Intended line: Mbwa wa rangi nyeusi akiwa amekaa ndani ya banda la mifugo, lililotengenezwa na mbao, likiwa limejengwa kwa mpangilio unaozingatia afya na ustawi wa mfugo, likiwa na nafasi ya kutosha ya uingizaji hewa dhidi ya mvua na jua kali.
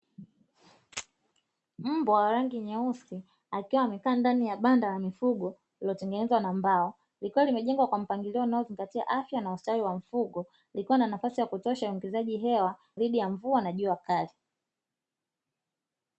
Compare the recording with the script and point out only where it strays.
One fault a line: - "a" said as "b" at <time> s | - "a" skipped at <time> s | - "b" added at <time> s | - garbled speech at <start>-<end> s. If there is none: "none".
none